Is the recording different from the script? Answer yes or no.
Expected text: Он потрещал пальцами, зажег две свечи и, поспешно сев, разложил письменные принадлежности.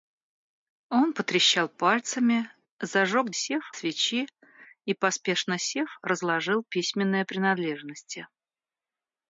yes